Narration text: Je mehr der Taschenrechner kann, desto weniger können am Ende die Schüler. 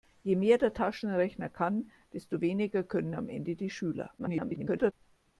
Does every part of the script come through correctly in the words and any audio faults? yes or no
no